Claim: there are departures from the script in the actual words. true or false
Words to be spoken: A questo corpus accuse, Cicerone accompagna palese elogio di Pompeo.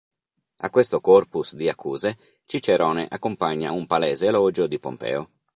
true